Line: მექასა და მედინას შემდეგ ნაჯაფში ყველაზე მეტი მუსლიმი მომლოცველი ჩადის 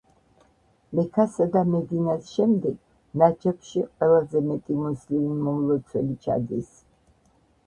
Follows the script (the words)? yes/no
yes